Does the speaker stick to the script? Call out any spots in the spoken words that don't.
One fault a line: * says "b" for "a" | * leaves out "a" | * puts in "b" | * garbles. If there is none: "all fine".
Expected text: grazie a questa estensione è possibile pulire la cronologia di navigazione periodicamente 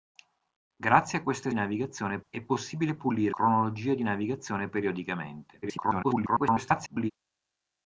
* says "navigazione" for "estensione"
* leaves out "la"
* garbles